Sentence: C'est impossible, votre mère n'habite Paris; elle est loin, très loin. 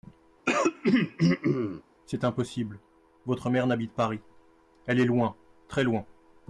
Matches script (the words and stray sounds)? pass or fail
fail